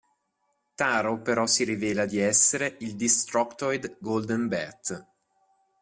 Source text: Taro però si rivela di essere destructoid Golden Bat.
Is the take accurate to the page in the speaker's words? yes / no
no